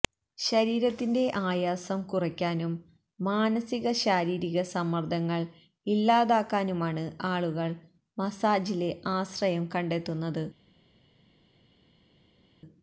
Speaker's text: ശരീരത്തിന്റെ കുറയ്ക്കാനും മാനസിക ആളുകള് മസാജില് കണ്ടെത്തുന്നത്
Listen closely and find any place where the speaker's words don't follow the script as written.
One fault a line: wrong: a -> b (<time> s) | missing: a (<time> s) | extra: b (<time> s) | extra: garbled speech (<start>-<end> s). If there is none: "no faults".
extra: ആയാസം (1.4 s)
extra: ശാരീരിക സമ്മര്ദ്ദങ്ങള് ഇല്ലാതാക്കാനുമാണ് (4.0 s)
extra: ആശ്രയം (9.2 s)